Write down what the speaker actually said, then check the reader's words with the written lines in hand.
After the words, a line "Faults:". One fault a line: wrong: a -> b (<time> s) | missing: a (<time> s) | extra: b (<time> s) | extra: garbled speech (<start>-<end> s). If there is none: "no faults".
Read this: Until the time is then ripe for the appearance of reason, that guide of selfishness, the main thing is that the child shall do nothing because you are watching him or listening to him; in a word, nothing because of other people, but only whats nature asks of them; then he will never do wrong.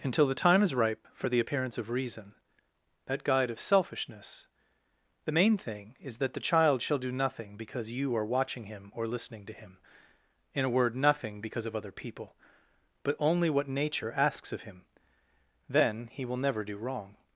Until the time is ripe for the appearance of reason, that guide of selfishness, the main thing is that the child shall do nothing because you are watching him or listening to him; in a word, nothing because of other people, but only what nature asks of him; then he will never do wrong.
Faults:
missing: then (0.7 s)
wrong: whats -> what (13.5 s)
wrong: them -> him (14.6 s)